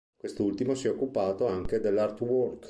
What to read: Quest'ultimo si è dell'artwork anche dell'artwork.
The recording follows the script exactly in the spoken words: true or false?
false